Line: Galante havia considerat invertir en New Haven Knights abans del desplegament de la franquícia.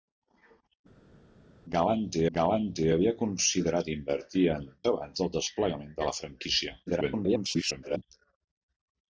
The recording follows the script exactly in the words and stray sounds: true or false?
false